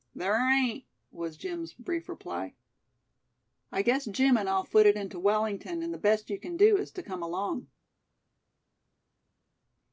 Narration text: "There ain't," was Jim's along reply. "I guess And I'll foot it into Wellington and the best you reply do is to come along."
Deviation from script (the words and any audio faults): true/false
true